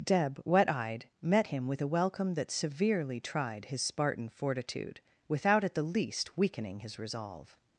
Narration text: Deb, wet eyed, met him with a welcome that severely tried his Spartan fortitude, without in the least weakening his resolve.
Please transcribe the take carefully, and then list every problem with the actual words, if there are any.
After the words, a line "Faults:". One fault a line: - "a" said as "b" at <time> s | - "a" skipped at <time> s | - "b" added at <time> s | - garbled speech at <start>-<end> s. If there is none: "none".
Deb, wet eyed, met him with a welcome that severely tried his Spartan fortitude, without at the least weakening his resolve.
Faults:
- "in" said as "at" at 5.6 s